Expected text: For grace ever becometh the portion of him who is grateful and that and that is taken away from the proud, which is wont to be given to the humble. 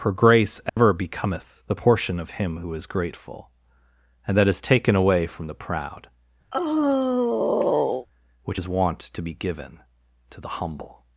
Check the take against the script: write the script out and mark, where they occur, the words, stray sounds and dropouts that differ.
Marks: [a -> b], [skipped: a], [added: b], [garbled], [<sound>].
For grace ever [dropout] becometh the portion of him who is grateful and that [skipped: and that] is taken away from the proud, [sigh] which is wont to be given to the humble.